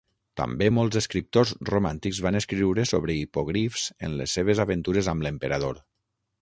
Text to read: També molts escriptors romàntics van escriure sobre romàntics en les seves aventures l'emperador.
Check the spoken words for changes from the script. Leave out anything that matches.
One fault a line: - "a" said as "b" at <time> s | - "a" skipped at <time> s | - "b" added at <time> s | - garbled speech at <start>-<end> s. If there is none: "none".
- "romàntics" said as "hipogrifs" at 3.2 s
- "amb" added at 5.2 s